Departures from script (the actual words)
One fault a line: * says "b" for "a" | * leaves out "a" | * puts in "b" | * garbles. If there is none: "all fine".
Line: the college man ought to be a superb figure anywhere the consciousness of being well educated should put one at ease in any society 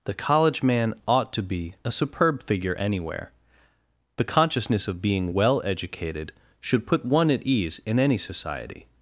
all fine